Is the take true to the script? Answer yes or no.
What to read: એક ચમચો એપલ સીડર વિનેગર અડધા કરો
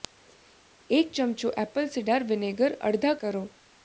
yes